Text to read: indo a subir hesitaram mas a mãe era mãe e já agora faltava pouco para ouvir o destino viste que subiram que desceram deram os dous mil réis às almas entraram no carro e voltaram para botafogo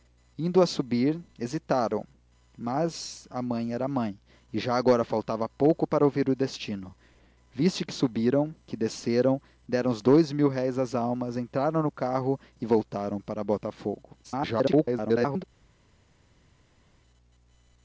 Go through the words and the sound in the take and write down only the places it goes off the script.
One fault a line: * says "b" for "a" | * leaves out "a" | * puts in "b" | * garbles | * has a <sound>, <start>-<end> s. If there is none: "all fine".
* garbles